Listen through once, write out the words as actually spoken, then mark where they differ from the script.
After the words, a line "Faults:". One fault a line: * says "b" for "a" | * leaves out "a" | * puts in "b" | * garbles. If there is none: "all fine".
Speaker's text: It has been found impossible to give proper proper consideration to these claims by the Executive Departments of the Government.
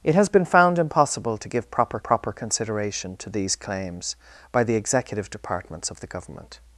It has been found impossible to give proper proper consideration to these claims by the Executive Departments of the Government.
Faults:
all fine